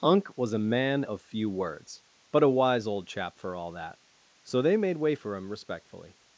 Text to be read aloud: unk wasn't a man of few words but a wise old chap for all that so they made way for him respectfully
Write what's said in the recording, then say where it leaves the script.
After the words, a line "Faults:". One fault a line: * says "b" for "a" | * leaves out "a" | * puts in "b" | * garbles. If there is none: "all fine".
unk was a man of few words but a wise old chap for all that so they made way for him respectfully
Faults:
* says "was" for "wasn't"